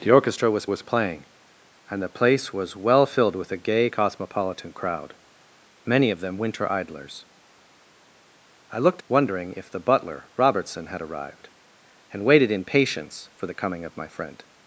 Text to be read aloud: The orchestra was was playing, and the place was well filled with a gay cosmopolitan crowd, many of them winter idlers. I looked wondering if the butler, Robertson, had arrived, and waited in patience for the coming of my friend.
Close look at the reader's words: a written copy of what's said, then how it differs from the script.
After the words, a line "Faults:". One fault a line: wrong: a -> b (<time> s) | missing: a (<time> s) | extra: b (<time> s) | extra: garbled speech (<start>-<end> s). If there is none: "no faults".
The orchestra was was playing, and the place was well filled with a gay cosmopolitan crowd, many of them winter idlers. I looked wondering if the butler, Robertson, had arrived, and waited in patience for the coming of my friend.
Faults:
no faults